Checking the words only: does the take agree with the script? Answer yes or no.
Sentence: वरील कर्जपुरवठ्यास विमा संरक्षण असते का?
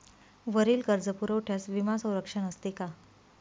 yes